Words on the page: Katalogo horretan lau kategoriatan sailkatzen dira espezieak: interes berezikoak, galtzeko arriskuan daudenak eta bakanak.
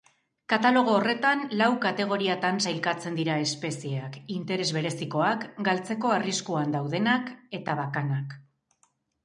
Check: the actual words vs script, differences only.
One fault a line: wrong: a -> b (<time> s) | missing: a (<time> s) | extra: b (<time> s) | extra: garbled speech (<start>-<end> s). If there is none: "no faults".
no faults